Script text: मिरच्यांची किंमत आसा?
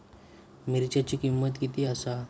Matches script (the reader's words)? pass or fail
fail